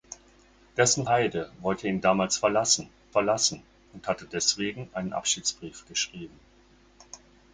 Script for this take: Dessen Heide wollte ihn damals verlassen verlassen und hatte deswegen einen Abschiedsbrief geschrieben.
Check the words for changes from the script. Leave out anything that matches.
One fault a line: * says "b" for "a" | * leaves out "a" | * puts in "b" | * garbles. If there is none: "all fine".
all fine